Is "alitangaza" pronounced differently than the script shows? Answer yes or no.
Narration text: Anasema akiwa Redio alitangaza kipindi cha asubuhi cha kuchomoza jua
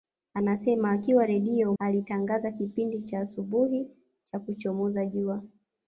no